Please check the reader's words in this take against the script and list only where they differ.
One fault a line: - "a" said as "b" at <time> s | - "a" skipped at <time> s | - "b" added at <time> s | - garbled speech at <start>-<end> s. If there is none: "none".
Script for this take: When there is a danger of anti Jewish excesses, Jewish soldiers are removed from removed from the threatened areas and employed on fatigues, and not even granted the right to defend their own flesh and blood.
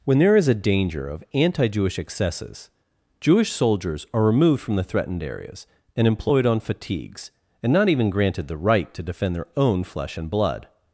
- "removed from" skipped at 4.8 s